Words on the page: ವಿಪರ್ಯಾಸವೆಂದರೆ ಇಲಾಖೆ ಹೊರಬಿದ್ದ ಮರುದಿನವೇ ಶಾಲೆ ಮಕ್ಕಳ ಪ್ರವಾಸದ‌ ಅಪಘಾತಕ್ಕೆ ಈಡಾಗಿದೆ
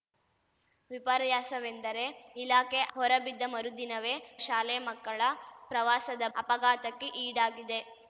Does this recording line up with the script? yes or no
yes